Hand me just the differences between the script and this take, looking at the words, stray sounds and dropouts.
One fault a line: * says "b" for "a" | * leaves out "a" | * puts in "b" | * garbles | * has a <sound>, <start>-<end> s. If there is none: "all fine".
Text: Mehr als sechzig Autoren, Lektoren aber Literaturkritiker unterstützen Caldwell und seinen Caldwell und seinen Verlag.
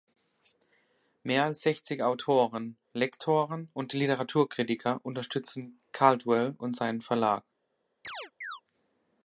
* says "und" for "aber"
* leaves out "Caldwell und seinen"
* has a chirp, 8.0-8.6 s